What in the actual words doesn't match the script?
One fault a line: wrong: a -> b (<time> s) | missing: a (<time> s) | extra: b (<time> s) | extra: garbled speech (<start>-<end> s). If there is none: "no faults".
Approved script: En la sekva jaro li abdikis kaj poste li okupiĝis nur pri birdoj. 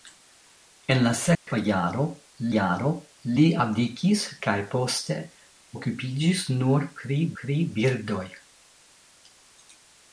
extra: jaro (2.5 s)
missing: li (5.2 s)
extra: pri (7.4 s)